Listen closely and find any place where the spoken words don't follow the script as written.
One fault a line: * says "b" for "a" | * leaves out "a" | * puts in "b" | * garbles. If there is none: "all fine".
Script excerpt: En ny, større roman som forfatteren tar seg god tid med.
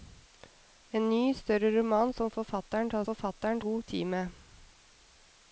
* says "forfatteren" for "seg"